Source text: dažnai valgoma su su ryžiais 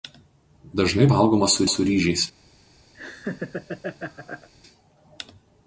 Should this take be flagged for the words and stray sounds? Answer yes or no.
yes